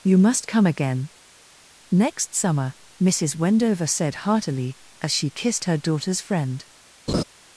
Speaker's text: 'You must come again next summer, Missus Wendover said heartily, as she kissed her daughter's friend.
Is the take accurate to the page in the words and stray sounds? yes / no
no